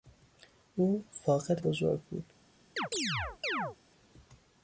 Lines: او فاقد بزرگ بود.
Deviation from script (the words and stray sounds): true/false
true